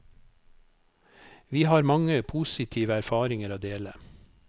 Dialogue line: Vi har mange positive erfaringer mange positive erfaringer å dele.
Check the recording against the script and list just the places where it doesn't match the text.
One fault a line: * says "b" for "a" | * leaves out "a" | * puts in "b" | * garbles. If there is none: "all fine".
* leaves out "mange positive erfaringer"